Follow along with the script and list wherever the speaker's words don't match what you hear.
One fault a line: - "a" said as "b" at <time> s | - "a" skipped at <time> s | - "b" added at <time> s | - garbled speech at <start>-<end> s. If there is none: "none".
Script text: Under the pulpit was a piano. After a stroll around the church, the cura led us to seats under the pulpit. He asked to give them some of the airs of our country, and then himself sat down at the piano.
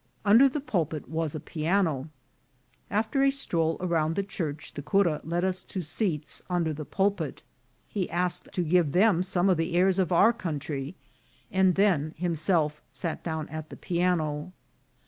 none